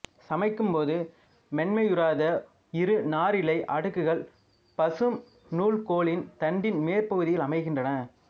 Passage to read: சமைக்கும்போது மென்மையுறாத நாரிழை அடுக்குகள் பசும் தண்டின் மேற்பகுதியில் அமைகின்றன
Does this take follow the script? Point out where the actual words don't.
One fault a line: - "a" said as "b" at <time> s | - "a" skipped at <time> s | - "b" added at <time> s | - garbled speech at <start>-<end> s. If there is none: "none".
- "இரு" added at 2.7 s
- "நூல்கோலின்" added at 5.5 s